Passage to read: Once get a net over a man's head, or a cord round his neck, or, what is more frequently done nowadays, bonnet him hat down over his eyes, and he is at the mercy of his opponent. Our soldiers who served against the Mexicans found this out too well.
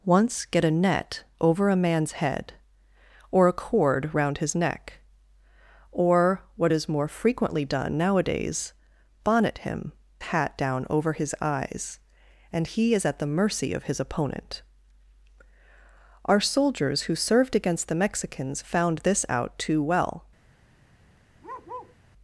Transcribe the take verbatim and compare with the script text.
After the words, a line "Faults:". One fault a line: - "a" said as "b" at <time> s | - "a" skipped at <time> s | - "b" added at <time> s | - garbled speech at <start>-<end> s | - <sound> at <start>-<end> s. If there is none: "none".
Once get a net over a man's head, or a cord round his neck, or, what is more frequently done nowadays, bonnet him hat down over his eyes, and he is at the mercy of his opponent. Our soldiers who served against the Mexicans found this out too well.
Faults:
- bark at 21.4-22.0 s